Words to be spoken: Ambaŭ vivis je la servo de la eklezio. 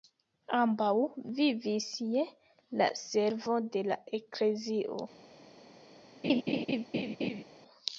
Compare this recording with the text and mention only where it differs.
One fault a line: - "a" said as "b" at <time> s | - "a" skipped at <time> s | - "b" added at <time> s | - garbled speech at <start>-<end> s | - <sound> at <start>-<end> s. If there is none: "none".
- laugh at 6.2-7.4 s